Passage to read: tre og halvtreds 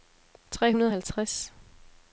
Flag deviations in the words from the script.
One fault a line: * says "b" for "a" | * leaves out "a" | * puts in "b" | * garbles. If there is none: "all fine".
* puts in "hundrede"